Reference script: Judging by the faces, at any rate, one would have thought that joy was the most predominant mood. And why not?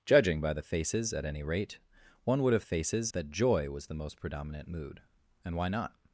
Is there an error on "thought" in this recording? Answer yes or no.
yes